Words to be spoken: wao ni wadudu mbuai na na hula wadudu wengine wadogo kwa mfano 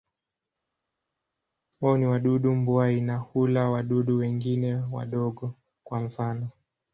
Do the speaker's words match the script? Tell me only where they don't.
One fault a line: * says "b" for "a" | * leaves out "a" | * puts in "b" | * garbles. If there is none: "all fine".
* leaves out "na"